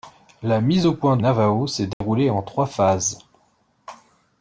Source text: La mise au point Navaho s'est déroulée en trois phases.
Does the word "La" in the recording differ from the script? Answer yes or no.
no